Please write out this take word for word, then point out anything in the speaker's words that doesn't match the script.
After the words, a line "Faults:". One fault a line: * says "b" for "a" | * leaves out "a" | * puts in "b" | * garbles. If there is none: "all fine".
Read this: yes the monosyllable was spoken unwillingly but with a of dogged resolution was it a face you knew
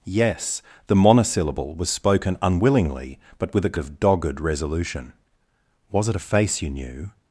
yes the monosyllable was spoken unwillingly but with a of dogged resolution was it a face you knew
Faults:
all fine